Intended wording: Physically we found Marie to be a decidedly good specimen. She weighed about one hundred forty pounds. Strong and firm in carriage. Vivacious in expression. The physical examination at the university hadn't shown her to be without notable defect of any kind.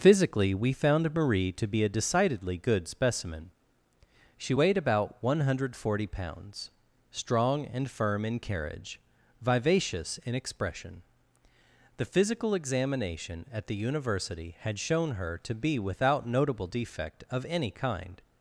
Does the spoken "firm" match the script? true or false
true